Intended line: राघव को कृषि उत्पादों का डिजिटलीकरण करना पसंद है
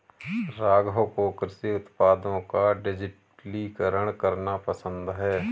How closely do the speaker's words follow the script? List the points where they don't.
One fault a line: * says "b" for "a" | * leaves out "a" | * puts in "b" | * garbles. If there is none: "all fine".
all fine